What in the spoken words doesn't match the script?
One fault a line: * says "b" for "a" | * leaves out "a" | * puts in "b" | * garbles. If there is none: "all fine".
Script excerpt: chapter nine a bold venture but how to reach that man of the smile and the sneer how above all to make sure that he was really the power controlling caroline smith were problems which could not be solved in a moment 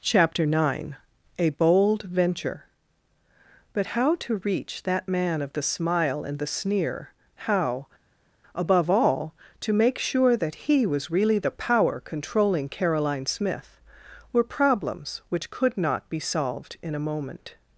all fine